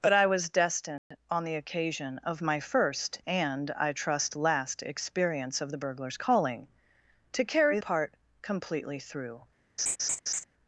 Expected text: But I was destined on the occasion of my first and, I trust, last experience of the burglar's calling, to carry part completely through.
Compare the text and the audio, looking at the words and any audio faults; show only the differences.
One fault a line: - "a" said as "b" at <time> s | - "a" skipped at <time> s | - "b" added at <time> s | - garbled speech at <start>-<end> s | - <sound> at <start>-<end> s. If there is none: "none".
- dropout at 1.0-1.1 s
- laugh at 9.8-10.4 s